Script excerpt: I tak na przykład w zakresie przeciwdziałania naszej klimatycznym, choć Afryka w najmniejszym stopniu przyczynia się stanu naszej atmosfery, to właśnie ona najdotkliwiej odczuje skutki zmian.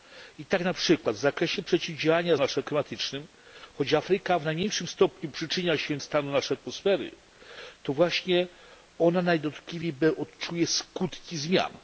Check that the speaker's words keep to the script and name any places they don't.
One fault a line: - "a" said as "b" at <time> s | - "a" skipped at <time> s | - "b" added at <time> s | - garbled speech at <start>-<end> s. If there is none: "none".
none